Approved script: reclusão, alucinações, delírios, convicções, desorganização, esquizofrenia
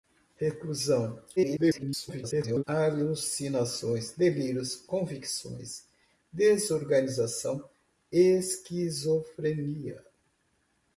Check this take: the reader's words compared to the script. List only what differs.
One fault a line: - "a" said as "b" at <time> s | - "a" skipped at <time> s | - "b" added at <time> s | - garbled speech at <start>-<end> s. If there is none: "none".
- garbled speech at 1.4-2.6 s